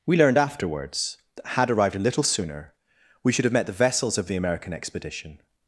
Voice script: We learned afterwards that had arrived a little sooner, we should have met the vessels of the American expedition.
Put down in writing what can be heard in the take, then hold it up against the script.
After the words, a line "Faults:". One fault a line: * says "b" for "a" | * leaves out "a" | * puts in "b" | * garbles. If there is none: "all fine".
We learned afterwards that had arrived a little sooner, we should have met the vessels of the American expedition.
Faults:
all fine